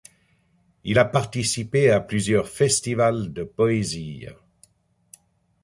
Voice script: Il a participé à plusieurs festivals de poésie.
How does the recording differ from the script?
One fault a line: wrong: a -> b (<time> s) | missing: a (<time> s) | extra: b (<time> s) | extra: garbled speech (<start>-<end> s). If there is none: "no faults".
no faults